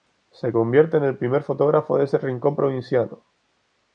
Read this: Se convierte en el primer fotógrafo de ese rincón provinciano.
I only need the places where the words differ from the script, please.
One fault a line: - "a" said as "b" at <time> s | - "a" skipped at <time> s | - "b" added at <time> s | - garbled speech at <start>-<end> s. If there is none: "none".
none